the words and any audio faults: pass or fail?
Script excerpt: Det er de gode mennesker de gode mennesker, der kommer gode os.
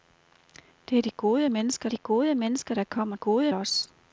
pass